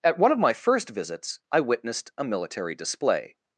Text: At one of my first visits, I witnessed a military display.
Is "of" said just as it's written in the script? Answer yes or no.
yes